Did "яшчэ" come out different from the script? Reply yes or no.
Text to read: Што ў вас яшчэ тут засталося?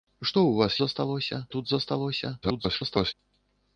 yes